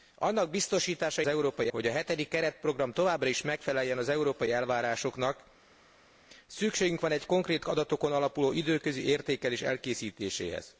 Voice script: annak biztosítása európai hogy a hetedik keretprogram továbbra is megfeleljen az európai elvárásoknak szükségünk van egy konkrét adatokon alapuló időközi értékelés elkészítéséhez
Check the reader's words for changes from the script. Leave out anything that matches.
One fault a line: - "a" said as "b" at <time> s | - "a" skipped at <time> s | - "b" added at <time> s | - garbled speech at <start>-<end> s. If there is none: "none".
none